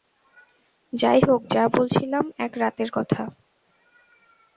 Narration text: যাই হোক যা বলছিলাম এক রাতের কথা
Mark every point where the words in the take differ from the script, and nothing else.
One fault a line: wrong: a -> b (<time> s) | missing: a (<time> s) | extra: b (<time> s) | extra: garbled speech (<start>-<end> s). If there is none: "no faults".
no faults